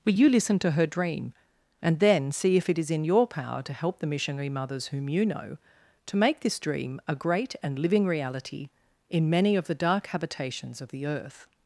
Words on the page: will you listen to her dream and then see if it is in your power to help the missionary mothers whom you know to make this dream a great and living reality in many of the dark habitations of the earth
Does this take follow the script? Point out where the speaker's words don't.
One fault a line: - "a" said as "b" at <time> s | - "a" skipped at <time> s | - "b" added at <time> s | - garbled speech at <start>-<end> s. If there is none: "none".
none